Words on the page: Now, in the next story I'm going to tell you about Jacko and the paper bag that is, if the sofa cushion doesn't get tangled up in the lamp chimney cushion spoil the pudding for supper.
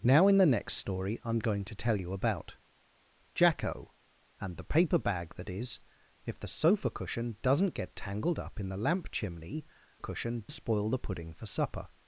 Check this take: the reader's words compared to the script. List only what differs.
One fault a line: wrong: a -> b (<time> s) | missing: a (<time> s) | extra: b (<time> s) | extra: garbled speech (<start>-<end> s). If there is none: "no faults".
no faults